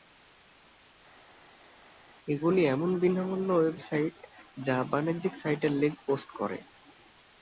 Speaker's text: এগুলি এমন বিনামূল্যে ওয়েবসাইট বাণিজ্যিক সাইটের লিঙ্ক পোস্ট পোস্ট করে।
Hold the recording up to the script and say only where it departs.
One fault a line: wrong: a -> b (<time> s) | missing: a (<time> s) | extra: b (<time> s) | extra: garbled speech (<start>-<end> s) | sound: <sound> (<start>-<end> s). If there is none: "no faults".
extra: যা (4.6 s)
missing: পোস্ট (6.3 s)